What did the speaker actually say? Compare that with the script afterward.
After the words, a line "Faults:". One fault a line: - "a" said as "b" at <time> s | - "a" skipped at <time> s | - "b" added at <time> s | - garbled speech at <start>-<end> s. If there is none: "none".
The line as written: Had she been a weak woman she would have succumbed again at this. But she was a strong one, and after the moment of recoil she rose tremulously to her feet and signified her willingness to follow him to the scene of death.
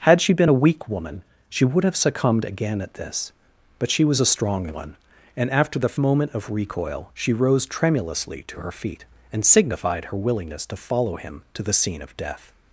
Had she been a weak woman she would have succumbed again at this. But she was a strong one, and after the moment of recoil she rose tremulously to her feet and signified her willingness to follow him to the scene of death.
Faults:
none